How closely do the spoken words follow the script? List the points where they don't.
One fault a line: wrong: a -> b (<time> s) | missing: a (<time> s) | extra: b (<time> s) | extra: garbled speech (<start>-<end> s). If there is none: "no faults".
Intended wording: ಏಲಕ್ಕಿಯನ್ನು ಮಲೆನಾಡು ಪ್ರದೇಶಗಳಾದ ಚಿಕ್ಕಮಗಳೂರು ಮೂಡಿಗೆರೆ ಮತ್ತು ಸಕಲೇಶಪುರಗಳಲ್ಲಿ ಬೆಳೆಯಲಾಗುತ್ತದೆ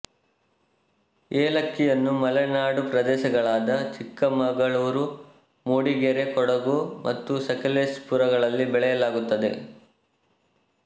extra: ಕೊಡಗು (6.3 s)